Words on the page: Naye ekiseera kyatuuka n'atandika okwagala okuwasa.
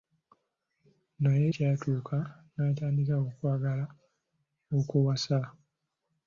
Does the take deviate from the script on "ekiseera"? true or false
true